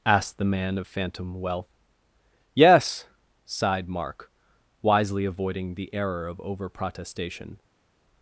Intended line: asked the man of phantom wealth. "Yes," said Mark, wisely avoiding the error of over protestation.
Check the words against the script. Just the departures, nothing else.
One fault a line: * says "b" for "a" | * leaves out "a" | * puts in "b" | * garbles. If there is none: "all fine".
* says "sighed" for "said"